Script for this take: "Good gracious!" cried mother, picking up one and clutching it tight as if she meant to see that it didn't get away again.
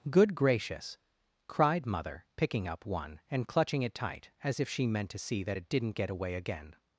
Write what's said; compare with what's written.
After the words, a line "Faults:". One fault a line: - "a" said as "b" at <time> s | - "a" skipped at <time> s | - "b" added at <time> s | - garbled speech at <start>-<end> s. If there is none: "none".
"Good gracious!" cried mother, picking up one and clutching it tight as if she meant to see that it didn't get away again.
Faults:
none